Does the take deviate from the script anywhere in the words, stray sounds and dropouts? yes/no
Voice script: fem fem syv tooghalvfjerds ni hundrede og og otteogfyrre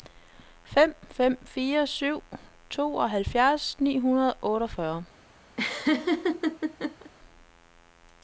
yes